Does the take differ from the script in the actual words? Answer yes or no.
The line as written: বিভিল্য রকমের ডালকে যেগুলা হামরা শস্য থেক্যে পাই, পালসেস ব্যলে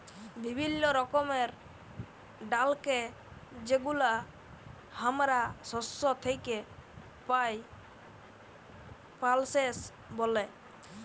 no